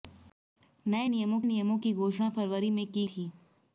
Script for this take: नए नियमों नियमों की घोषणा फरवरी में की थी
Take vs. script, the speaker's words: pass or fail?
pass